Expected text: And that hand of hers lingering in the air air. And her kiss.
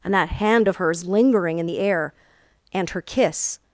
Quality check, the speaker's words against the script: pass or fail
fail